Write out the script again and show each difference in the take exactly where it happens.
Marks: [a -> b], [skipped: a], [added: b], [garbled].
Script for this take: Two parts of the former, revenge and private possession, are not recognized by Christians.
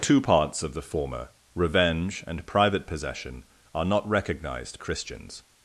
Two parts of the former, revenge and private possession, are not recognized [skipped: by] Christians.